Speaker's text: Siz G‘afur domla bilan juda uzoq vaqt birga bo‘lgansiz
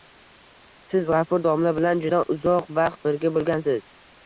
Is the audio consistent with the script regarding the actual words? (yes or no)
yes